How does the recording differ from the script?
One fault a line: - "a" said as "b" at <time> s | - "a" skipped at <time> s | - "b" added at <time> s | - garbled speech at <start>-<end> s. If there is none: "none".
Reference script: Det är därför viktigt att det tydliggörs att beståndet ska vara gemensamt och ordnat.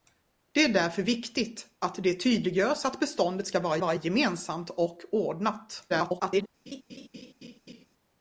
- "vara" added at 3.8 s
- garbled speech at 5.9-6.5 s